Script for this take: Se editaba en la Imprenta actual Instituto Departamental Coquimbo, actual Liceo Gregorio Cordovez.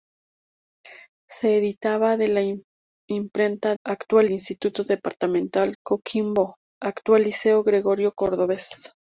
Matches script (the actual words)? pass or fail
pass